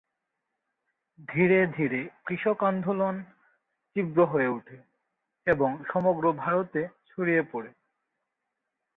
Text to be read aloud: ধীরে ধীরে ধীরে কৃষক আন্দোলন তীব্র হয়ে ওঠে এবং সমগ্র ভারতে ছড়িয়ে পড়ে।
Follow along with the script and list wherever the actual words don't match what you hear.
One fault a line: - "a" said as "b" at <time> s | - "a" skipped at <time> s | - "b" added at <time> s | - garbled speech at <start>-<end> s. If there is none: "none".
- "ধীরে" skipped at 2.0 s